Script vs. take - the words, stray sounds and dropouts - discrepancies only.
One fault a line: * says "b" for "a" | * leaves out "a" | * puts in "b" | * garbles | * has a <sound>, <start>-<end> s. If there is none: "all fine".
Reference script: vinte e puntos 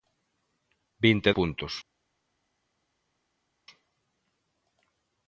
all fine